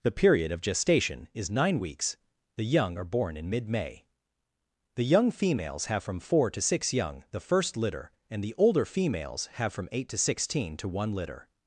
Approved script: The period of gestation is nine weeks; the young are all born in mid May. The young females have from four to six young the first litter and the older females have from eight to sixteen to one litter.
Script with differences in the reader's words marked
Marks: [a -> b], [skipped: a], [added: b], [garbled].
The period of gestation is nine weeks; the young are [skipped: all] born in mid May. The young females have from four to six young the first litter and the older females have from eight to sixteen to one litter.